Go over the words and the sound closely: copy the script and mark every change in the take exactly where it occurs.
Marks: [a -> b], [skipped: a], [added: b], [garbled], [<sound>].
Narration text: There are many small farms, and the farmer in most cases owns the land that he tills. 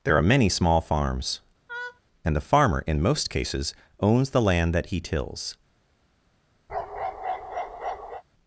There are many small farms, [laugh] and the farmer in most cases owns the land that he tills. [bark]